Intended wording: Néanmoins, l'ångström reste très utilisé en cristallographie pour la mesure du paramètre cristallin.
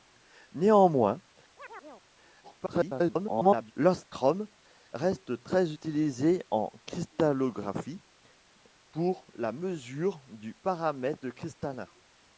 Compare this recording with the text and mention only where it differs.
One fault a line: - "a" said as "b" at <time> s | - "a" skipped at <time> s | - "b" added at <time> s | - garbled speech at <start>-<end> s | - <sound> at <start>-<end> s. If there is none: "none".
- chirp at 1.6-2.1 s
- garbled speech at 2.4-3.7 s